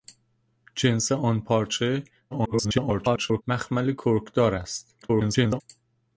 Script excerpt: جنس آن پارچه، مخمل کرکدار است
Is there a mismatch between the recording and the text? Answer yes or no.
yes